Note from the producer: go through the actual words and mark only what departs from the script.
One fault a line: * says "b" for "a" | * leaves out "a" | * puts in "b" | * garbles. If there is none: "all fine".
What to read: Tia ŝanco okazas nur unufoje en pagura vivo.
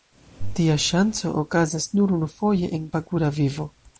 all fine